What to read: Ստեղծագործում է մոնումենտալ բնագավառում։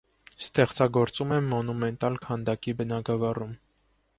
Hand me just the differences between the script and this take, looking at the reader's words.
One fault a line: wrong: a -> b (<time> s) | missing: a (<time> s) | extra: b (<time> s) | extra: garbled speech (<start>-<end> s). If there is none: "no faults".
extra: քանդակի (2.3 s)